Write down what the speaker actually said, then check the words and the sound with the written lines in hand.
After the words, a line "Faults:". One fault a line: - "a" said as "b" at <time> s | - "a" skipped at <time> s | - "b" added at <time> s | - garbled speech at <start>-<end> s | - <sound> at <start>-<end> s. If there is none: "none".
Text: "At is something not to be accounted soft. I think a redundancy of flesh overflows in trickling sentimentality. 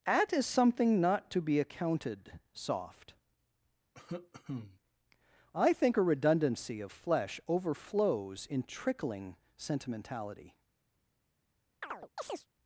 "At is something not to be accounted soft. I think a redundancy of flesh overflows in trickling sentimentality.
Faults:
- cough at 3.9-4.8 s
- chirp at 11.8-12.5 s